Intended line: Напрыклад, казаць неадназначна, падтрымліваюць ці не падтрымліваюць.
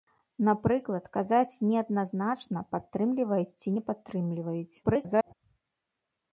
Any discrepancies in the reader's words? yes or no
yes